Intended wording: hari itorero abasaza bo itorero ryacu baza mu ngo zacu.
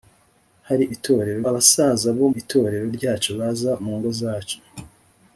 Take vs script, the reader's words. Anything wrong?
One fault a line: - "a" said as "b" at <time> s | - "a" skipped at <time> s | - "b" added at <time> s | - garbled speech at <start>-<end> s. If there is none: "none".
none